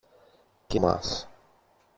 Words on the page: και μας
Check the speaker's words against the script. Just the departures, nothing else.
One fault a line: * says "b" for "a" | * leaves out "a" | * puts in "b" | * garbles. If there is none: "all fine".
all fine